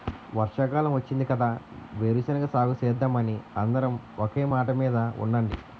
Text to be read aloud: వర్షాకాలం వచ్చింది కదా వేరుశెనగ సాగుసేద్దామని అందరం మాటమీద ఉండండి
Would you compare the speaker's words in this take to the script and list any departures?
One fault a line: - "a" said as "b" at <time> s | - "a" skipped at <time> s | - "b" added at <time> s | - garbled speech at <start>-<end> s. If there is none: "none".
- "ఒకే" added at 4.2 s